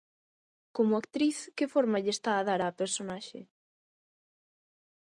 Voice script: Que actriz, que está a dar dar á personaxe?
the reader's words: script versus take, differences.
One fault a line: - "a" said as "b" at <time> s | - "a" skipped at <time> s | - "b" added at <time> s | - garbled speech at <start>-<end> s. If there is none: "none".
- "Que" said as "Como" at 0.8 s
- "forma lle" added at 1.7 s
- "dar" skipped at 2.6 s